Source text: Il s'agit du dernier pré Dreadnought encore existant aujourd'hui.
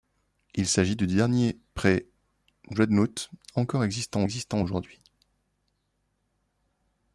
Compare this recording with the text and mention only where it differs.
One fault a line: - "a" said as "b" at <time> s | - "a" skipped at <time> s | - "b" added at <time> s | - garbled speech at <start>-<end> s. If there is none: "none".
- "existant" added at 4.2 s